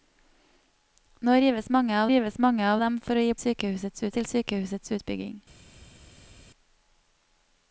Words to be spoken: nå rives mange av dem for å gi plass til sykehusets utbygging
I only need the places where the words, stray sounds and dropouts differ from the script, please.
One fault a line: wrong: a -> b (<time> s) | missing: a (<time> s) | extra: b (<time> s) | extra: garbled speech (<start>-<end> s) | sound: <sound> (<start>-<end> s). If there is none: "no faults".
extra: rives mange av (2.1 s)
wrong: plass -> sykehusets (3.4 s)